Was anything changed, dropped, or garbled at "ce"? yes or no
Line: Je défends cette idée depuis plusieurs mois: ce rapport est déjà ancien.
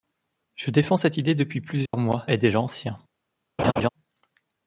yes